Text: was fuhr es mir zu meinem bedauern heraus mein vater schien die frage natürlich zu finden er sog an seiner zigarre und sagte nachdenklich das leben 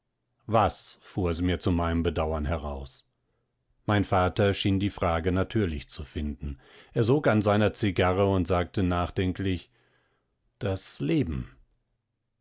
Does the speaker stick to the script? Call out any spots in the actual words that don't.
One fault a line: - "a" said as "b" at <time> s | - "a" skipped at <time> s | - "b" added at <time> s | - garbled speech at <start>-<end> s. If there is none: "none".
none